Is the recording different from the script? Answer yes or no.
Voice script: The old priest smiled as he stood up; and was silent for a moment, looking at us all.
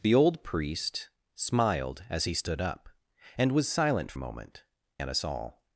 yes